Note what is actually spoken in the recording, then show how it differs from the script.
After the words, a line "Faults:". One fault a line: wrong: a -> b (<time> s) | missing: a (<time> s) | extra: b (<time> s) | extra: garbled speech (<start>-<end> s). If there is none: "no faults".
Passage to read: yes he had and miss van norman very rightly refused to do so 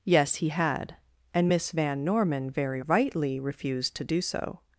yes he had and miss van norman very rightly refused to do so
Faults:
no faults